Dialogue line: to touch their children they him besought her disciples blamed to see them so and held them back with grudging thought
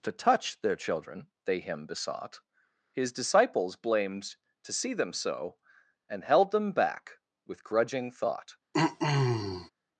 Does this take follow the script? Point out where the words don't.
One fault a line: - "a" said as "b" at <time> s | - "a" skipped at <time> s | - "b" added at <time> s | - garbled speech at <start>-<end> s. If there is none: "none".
- "her" said as "his" at 2.9 s